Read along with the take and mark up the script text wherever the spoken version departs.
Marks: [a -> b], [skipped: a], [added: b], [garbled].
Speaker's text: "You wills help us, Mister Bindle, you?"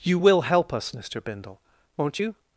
"You [wills -> will] help us, Mister Bindle, [added: won't] you?"